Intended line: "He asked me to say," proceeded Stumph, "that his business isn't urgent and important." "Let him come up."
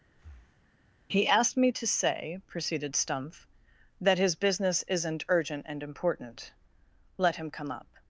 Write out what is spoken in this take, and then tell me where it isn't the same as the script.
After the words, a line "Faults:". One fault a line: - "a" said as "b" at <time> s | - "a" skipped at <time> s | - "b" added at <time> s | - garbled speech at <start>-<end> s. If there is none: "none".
"He asked me to say," proceeded Stumph, "that his business isn't urgent and important." "Let him come up."
Faults:
none